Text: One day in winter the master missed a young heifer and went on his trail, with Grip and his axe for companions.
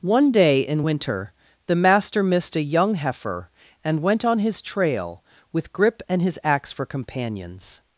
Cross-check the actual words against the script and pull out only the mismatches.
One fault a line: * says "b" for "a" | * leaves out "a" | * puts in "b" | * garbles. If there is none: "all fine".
all fine